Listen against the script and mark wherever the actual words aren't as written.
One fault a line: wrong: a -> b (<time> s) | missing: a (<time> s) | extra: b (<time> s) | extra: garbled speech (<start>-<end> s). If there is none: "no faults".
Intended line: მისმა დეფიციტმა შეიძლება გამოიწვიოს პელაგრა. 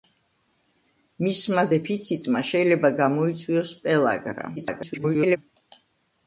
extra: garbled speech (4.6-5.4 s)